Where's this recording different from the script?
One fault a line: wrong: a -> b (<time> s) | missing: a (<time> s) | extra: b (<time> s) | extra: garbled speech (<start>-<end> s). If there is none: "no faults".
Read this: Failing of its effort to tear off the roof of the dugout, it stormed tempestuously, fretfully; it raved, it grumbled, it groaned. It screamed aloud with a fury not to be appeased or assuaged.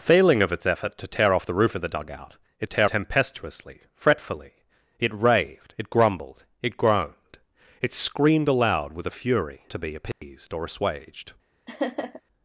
wrong: stormed -> tear (2.6 s)
missing: not (9.6 s)